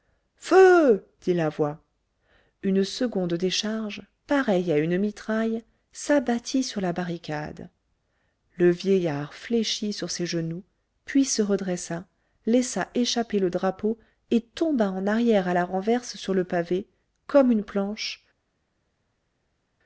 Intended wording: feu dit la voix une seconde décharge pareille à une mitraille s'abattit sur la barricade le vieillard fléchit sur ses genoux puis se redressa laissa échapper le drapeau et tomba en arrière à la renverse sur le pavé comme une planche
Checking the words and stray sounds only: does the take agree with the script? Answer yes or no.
yes